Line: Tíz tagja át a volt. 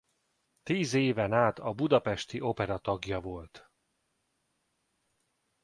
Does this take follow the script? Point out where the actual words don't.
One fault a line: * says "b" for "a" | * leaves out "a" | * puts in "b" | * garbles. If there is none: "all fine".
* says "éven" for "tagja"
* puts in "budapesti Opera tagja"